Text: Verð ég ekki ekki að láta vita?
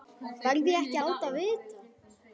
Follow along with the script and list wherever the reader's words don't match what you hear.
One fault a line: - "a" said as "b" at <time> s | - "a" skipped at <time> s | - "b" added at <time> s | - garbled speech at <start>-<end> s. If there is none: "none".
- "ekki" skipped at 1.0 s